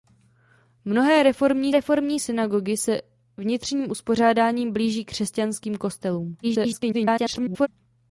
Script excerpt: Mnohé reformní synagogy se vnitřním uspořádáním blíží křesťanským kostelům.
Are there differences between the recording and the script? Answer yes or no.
yes